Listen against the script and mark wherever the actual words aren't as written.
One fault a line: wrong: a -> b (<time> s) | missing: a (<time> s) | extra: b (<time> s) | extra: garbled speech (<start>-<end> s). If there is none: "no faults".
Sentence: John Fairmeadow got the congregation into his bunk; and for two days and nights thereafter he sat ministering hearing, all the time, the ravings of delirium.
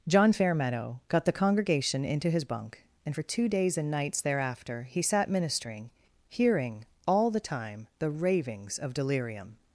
no faults